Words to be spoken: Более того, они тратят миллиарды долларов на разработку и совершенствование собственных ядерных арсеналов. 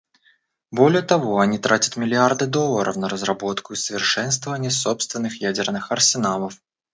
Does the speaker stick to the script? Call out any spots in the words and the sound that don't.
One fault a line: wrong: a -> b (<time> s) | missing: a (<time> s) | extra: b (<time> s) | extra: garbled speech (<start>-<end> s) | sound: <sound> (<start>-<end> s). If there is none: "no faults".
no faults